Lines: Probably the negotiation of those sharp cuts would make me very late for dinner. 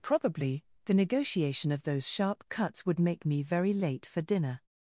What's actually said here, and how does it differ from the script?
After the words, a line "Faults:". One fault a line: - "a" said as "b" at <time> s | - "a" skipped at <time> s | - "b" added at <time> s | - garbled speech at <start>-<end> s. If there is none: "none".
Probably the negotiation of those sharp cuts would make me very late for dinner.
Faults:
none